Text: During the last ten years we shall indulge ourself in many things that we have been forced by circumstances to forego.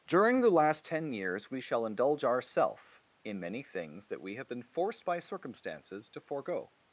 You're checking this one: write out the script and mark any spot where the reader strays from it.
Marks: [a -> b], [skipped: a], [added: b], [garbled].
During the last ten years we shall indulge ourself in many things that we have been forced by circumstances to forego.